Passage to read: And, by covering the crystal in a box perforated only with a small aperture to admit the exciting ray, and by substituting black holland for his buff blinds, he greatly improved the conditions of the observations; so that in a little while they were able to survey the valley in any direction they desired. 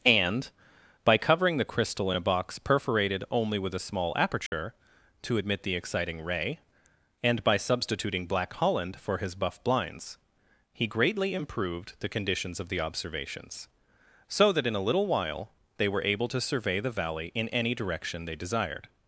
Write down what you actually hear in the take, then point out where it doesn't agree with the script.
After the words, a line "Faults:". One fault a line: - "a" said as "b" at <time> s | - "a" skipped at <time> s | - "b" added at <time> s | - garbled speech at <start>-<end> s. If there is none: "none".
And, by covering the crystal in a box perforated only with a small aperture to admit the exciting ray, and by substituting black holland for his buff blinds, he greatly improved the conditions of the observations; so that in a little while they were able to survey the valley in any direction they desired.
Faults:
none